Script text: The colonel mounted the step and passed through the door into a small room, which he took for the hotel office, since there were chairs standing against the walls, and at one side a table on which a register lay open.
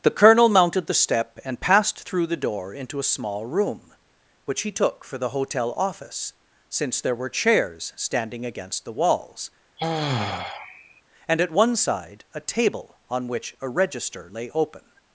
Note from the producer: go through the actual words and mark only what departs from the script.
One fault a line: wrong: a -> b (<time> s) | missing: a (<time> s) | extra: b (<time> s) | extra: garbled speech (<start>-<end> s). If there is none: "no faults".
no faults